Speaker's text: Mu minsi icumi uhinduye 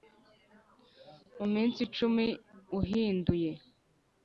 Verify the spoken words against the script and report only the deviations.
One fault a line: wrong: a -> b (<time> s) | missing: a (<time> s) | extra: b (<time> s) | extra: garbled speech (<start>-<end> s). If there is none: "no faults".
no faults